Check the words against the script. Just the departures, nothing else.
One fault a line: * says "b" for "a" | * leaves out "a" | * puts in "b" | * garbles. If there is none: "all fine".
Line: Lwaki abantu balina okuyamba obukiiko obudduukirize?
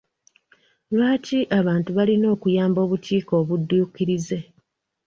all fine